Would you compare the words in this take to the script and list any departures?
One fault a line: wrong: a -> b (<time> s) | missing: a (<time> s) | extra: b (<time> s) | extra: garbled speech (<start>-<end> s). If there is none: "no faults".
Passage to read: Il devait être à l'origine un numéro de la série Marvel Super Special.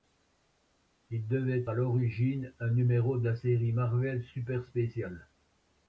missing: être (1.7 s)